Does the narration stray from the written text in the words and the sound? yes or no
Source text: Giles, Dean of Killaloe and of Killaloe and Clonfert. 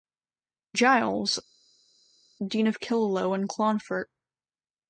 yes